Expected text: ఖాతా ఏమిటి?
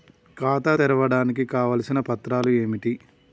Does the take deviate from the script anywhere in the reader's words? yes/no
yes